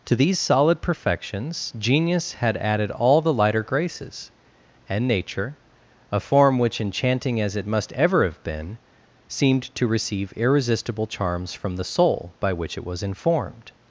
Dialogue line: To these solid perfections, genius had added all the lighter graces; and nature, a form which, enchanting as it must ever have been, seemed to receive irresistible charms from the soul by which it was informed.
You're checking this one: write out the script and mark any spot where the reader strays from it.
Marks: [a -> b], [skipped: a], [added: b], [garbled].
To these solid perfections, genius had added all the lighter graces; and nature, a form which, enchanting as it must ever have been, seemed to receive irresistible charms from the soul by which it was informed.